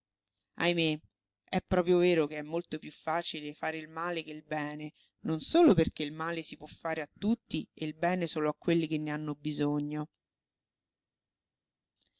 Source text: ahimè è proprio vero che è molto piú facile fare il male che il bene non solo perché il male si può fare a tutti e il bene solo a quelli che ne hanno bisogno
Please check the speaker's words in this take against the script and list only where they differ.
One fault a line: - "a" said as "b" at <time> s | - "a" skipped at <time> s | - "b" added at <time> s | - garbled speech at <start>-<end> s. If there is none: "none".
none